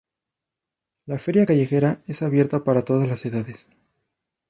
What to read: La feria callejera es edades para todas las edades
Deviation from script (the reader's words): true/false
true